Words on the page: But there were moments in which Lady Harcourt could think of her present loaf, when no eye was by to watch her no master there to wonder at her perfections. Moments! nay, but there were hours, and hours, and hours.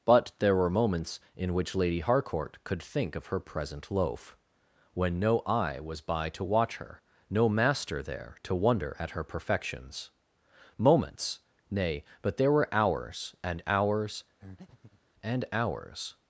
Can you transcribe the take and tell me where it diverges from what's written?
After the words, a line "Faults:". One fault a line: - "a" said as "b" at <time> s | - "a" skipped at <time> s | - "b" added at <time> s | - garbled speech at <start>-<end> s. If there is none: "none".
But there were moments in which Lady Harcourt could think of her present loaf, when no eye was by to watch her no master there to wonder at her perfections. Moments! nay, but there were hours, and hours, and hours.
Faults:
none